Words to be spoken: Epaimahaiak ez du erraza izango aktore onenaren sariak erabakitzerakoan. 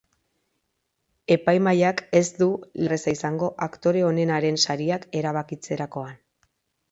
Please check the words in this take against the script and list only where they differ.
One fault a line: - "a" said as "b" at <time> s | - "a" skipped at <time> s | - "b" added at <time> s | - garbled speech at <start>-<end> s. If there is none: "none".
none